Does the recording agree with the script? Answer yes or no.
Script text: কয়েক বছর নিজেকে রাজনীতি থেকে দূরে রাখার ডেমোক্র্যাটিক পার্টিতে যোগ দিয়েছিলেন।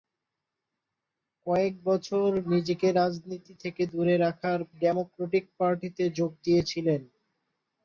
yes